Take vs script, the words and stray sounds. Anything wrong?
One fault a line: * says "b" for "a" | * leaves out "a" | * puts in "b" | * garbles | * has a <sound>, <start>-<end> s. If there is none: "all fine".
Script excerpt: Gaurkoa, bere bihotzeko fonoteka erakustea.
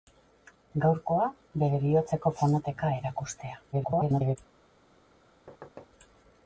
* garbles
* has a thud, 5.5-5.9 s